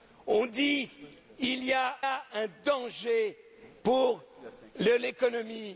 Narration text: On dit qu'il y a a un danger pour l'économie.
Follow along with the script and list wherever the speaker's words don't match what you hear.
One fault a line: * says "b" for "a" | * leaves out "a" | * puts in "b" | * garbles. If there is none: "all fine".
all fine